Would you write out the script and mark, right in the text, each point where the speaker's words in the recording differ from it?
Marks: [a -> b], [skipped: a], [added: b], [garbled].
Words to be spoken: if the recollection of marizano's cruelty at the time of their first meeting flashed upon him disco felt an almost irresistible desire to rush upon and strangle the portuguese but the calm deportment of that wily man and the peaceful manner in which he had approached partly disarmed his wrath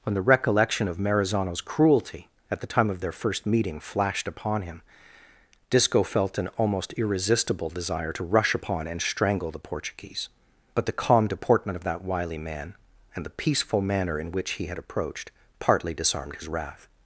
[if -> when] the recollection of marizano's cruelty at the time of their first meeting flashed upon him disco felt an almost irresistible desire to rush upon and strangle the portuguese but the calm deportment of that wily man and the peaceful manner in which he had approached partly disarmed his wrath